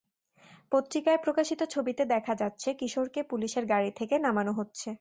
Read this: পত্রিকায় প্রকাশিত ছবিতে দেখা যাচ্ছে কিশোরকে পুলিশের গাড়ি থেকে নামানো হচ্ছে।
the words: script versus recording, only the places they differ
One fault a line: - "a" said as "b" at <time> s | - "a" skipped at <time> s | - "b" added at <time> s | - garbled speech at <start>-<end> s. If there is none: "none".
none